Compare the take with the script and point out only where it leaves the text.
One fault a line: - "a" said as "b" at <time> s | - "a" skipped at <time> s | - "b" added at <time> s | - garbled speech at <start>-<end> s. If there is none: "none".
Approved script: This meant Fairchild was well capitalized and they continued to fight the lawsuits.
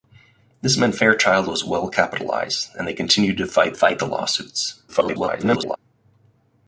- "fight" added at 3.7 s
- garbled speech at 4.9-5.8 s